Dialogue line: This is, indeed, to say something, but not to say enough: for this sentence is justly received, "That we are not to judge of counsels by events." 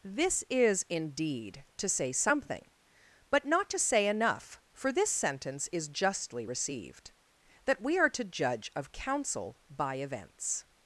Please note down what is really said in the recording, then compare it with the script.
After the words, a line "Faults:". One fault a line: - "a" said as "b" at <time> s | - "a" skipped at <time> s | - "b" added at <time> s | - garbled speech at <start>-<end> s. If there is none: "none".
This is, indeed, to say something, but not to say enough: for this sentence is justly received, "That we are to judge of counsel by events."
Faults:
- "not" skipped at 8.1 s
- "counsels" said as "counsel" at 8.9 s